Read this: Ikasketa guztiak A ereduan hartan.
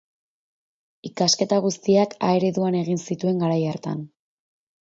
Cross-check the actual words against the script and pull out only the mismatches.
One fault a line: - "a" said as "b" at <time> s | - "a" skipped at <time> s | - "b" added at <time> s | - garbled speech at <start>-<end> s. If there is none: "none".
- "egin zituen garai" added at 2.8 s